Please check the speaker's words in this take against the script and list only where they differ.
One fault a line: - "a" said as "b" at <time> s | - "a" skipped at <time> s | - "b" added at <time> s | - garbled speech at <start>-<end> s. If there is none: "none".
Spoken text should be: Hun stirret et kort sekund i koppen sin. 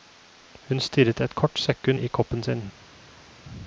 none